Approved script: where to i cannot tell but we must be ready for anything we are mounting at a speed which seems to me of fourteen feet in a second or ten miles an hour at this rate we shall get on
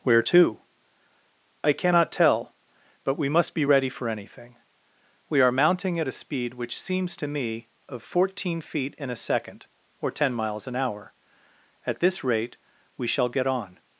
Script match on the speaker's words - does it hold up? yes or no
yes